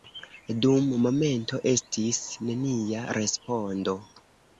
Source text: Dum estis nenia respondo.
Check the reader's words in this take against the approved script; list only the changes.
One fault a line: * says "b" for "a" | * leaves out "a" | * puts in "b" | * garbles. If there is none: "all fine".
* puts in "momento"